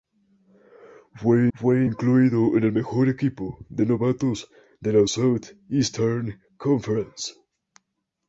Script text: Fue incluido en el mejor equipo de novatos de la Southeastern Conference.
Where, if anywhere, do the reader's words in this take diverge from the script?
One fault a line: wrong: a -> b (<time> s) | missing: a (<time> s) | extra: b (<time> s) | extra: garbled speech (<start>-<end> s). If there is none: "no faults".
extra: fue (1.5 s)